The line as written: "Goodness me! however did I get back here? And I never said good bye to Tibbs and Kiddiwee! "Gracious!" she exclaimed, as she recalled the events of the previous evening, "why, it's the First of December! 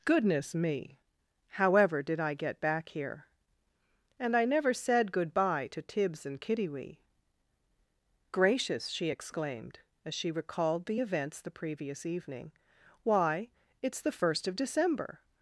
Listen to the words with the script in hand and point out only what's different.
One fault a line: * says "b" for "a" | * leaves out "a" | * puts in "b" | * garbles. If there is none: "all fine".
* leaves out "of"